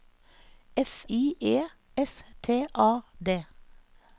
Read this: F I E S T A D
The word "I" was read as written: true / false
true